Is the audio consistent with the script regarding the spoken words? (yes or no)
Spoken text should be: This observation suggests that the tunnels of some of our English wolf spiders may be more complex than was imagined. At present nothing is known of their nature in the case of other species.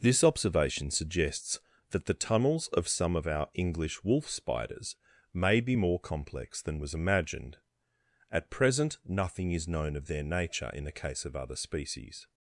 yes